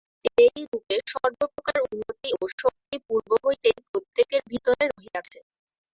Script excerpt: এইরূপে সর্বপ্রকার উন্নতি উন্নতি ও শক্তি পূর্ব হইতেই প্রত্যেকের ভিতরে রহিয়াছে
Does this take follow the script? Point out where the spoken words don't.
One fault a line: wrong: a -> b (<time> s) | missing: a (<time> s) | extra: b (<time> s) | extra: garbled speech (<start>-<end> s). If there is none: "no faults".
missing: উন্নতি (2.3 s)